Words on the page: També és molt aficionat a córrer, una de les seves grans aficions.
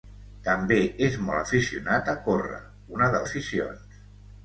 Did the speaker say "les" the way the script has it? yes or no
no